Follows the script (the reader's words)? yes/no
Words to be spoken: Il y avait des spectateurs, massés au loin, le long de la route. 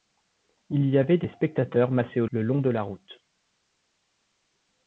no